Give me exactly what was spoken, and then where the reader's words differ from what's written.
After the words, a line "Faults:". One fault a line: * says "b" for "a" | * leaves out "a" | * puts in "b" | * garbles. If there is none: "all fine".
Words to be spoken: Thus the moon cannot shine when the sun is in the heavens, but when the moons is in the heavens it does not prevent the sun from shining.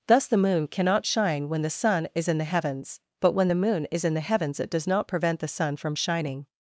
Thus the moon cannot shine when the sun is in the heavens, but when the moon is in the heavens it does not prevent the sun from shining.
Faults:
* says "moon" for "moons"